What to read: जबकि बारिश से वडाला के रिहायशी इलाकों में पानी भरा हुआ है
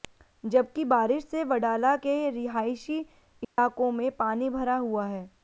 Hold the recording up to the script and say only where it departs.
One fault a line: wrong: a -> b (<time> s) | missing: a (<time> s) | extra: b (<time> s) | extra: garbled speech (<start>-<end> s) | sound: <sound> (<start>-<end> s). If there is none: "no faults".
sound: dropout (3.4-3.6 s)